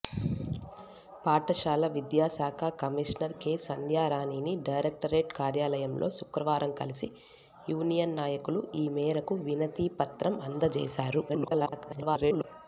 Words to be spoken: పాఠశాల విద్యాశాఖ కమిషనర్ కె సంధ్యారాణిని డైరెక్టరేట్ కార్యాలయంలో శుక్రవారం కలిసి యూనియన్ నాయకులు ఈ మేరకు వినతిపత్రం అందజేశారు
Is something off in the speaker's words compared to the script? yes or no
yes